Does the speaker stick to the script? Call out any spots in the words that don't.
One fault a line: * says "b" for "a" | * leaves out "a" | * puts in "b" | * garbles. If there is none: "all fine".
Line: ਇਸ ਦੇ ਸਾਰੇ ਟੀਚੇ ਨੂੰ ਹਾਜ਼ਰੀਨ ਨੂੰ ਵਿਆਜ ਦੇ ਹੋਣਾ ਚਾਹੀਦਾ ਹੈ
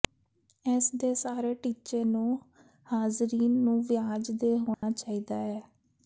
all fine